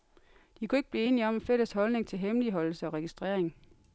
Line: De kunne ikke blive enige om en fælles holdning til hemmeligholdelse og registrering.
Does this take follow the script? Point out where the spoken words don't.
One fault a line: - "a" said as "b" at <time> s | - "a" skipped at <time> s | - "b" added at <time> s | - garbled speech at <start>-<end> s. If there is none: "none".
none